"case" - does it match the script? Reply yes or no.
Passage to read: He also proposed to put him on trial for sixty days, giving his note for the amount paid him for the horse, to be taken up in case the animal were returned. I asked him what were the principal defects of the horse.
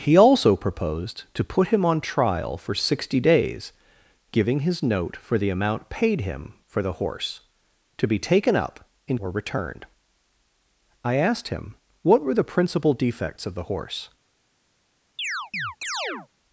no